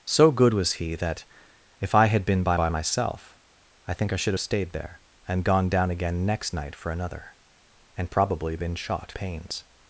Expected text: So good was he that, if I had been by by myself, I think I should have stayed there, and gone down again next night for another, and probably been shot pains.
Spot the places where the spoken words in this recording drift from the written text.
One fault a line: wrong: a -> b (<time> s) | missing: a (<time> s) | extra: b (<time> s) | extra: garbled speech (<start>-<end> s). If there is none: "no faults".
no faults